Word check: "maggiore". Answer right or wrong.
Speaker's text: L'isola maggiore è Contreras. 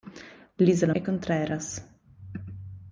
wrong